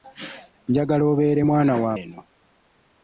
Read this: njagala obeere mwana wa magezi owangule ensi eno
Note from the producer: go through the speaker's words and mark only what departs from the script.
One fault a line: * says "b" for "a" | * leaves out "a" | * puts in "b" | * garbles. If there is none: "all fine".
* leaves out "magezi owangule ensi"